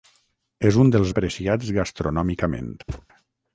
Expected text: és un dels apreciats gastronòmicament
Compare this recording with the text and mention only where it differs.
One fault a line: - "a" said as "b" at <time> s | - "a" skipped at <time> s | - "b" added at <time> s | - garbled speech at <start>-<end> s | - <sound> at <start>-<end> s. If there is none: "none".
- thud at 2.9-3.1 s